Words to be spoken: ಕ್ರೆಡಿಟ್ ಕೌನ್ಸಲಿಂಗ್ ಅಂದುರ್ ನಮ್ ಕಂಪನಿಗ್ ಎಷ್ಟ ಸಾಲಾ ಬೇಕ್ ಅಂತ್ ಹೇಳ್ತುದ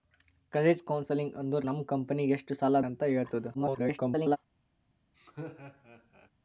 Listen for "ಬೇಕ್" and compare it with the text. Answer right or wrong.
wrong